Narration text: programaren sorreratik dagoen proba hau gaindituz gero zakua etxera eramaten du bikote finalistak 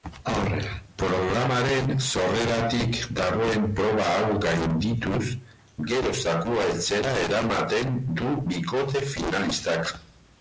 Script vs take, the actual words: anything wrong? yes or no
no